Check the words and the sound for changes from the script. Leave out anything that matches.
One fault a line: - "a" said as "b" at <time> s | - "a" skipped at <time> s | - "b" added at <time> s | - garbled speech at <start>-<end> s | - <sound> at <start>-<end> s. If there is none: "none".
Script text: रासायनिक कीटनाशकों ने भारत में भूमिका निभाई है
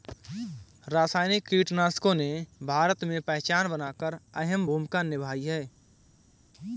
- "पहचान बनाकर अहम" added at 3.2 s